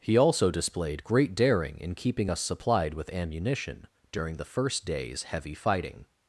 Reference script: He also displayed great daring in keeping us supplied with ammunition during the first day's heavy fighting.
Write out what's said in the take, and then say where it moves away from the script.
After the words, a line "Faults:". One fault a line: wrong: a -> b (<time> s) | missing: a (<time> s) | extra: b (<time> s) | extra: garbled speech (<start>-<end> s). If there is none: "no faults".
He also displayed great daring in keeping us supplied with ammunition during the first day's heavy fighting.
Faults:
no faults